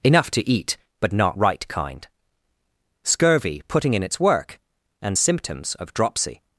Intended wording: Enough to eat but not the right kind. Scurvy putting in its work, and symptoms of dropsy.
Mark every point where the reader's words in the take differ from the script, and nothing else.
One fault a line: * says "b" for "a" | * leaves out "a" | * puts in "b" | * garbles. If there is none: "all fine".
* leaves out "the"